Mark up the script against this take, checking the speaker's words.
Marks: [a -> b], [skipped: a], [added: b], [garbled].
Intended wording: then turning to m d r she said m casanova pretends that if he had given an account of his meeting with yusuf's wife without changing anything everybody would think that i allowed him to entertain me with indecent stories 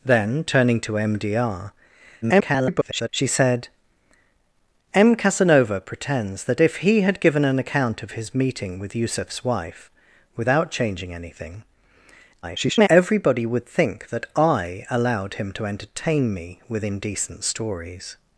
then turning to m d r [garbled] she said m casanova pretends that if he had given an account of his meeting with yusuf's wife without changing anything [garbled] everybody would think that i allowed him to entertain me with indecent stories